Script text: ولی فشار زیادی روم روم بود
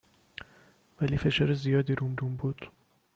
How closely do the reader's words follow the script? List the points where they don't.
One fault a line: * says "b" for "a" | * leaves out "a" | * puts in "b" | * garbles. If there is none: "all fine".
all fine